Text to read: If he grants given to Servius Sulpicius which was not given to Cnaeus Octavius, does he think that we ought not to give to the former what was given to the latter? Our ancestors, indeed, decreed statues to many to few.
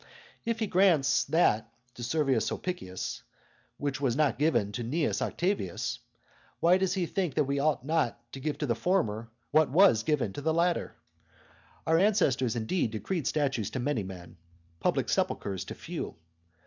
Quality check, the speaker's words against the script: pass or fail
fail